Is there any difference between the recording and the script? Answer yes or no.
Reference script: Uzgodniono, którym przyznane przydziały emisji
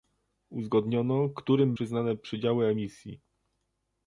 no